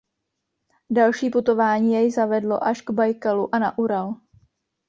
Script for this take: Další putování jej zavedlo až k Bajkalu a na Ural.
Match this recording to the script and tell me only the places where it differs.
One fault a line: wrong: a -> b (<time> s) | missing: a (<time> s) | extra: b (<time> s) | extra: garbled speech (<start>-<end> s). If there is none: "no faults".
no faults